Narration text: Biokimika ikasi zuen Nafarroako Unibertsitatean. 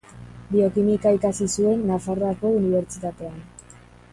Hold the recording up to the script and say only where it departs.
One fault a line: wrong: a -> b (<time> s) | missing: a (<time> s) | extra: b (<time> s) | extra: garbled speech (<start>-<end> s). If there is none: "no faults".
no faults